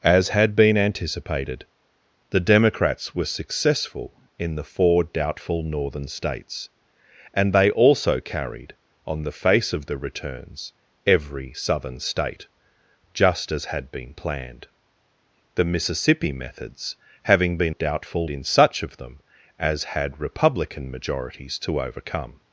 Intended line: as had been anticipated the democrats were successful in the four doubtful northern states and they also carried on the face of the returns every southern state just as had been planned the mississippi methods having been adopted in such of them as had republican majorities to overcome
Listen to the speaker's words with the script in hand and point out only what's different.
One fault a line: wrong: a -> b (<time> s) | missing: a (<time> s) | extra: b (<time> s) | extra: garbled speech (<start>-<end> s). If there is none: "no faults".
wrong: adopted -> doubtful (17.7 s)